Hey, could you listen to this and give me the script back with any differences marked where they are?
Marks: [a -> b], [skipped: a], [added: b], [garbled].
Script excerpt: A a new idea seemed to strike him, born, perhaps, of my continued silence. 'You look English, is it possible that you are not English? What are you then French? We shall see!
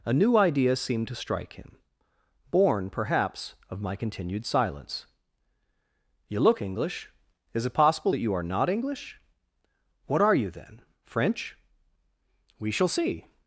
A [skipped: a] new idea seemed to strike him, born, perhaps, of my continued silence. 'You look English, is it possible that you are not English? What are you then French? We shall see!